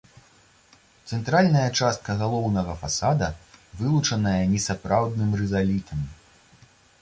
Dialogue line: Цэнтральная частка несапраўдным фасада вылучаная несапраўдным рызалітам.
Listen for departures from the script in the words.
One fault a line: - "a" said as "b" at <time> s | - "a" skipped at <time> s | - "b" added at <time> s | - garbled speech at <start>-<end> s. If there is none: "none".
- "несапраўдным" said as "галоўнага" at 2.2 s